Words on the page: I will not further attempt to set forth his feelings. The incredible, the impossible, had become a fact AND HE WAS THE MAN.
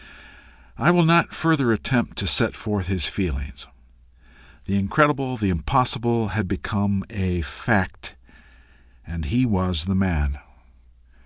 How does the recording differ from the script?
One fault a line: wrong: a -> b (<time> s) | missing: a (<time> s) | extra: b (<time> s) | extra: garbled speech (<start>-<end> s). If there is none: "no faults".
no faults